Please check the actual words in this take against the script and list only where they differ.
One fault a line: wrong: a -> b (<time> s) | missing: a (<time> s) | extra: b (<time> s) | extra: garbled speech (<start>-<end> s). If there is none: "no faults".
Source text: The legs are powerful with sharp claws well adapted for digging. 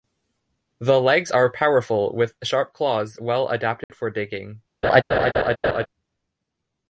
no faults